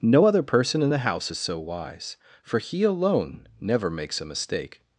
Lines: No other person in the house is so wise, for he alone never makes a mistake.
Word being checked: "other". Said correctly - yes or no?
yes